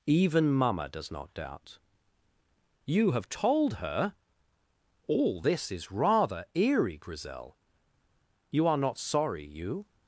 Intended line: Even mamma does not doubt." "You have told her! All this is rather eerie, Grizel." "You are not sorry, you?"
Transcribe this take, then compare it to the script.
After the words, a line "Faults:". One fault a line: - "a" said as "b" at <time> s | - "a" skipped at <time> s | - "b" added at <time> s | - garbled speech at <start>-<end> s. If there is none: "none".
Even mamma does not doubt." "You have told her! All this is rather eerie, Grizel." "You are not sorry, you?"
Faults:
none